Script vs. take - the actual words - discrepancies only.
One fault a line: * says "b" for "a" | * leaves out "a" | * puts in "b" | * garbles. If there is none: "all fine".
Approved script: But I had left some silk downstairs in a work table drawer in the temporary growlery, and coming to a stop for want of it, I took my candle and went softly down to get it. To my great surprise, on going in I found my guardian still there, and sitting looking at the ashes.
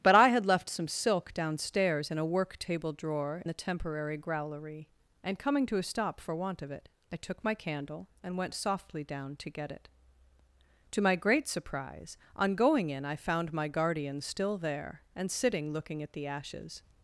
* leaves out "in"